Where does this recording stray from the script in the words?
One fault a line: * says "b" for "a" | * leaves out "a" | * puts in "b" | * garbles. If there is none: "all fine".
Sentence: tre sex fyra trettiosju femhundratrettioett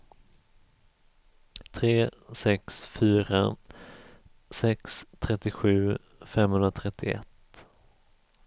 * puts in "sex"